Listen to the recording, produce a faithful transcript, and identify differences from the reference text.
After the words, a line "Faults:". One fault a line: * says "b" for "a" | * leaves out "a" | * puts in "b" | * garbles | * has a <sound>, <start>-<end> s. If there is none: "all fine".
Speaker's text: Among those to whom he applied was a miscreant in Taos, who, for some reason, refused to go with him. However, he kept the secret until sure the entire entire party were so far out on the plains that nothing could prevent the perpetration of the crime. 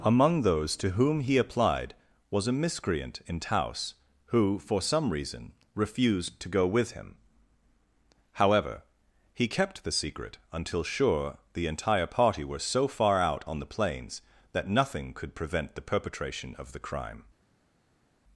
Among those to whom he applied was a miscreant in Taos, who, for some reason, refused to go with him. However, he kept the secret until sure the entire party were so far out on the plains that nothing could prevent the perpetration of the crime.
Faults:
* leaves out "entire"